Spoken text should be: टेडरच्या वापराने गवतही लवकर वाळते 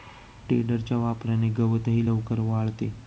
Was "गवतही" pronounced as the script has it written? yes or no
yes